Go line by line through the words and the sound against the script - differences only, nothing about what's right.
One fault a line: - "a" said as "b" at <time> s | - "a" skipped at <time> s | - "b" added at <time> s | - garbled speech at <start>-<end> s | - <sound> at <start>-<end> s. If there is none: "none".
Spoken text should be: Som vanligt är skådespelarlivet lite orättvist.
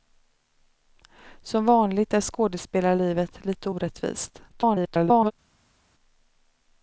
- garbled speech at 4.5-5.3 s